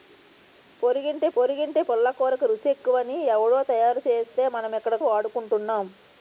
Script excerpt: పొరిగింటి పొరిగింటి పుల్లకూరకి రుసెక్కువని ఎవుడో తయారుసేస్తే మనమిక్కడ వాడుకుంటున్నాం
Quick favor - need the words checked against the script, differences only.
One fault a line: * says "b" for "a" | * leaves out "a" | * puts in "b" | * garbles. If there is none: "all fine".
all fine